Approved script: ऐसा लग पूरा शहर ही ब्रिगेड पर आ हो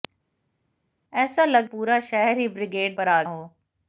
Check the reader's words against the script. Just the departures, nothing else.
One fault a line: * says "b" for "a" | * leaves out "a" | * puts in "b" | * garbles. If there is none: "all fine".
all fine